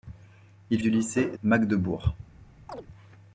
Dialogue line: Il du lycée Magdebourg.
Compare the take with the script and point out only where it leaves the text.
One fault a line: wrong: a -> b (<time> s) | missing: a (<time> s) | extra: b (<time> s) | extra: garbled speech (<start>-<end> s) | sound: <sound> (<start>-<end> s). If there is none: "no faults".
sound: chirp (2.7-2.9 s)